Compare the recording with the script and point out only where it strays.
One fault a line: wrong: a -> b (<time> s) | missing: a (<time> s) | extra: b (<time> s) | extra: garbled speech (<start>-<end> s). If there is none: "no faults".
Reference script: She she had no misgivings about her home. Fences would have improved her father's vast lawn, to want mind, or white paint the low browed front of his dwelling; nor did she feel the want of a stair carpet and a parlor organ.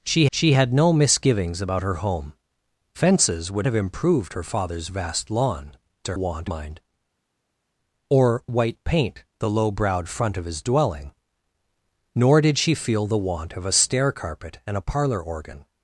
no faults